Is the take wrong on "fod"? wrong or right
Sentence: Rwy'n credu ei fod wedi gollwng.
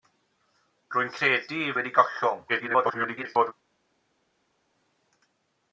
wrong